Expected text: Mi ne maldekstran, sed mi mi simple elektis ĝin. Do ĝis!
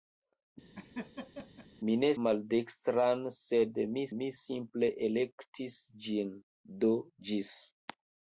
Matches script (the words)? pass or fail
pass